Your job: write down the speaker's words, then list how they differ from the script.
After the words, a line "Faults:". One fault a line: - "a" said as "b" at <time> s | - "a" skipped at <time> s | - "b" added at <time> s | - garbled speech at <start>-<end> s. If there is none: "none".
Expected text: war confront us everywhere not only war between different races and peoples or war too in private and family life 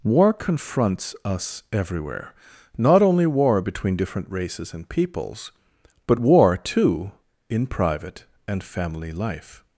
war confronts us everywhere not only war between different races and peoples but war too in private and family life
Faults:
- "confront" said as "confronts" at 0.3 s
- "or" said as "but" at 6.1 s